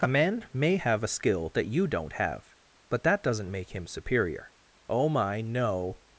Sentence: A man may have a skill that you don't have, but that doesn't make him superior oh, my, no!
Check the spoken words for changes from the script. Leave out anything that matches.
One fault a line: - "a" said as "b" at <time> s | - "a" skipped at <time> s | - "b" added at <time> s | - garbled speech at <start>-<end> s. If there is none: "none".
none